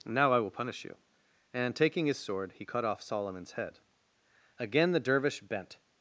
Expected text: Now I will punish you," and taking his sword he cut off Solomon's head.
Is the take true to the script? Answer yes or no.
no